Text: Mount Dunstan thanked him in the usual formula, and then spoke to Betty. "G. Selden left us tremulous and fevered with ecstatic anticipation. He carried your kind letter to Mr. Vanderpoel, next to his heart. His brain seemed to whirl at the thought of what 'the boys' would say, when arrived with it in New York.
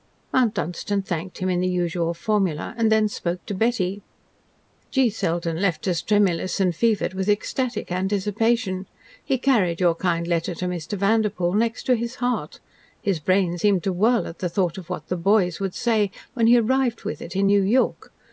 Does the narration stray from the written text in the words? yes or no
yes